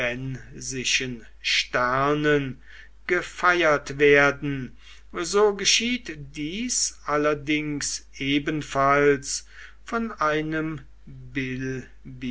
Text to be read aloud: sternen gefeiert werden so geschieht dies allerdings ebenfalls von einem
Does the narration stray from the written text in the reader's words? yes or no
no